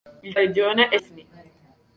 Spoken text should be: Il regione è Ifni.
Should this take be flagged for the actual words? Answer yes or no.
no